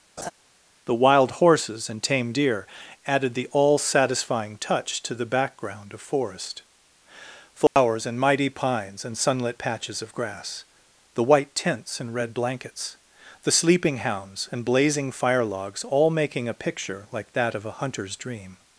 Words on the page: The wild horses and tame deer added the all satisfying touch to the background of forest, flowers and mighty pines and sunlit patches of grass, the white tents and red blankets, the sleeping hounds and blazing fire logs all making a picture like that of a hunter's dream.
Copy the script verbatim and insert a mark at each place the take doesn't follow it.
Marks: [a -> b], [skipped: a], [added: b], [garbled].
The wild horses and tame deer added the all satisfying touch to the background of forest, flowers and mighty pines and sunlit patches of grass, the white tents and red blankets, the sleeping hounds and blazing fire logs all making a picture like that of a hunter's dream.